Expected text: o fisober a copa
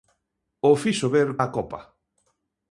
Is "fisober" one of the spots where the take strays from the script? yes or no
no